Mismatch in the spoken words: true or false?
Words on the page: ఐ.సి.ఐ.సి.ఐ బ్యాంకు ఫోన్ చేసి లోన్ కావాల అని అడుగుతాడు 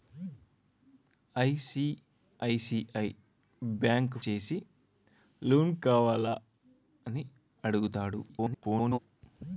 true